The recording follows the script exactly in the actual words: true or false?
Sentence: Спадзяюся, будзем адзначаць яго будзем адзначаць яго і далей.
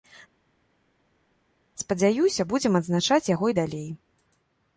false